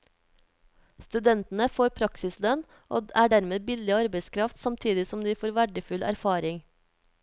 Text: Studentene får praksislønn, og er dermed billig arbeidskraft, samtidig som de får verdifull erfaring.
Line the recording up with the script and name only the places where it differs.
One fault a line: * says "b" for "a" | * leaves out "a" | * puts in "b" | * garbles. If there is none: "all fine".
all fine